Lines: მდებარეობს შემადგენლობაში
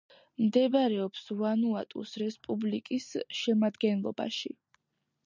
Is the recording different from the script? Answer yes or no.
yes